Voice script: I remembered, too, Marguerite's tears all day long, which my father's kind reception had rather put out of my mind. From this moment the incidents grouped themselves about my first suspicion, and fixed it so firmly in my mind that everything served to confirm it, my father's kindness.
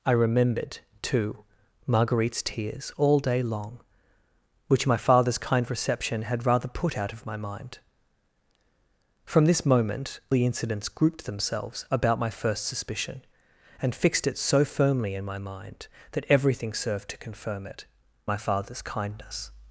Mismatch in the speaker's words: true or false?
false